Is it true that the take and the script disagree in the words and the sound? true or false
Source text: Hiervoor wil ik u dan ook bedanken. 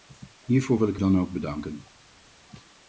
true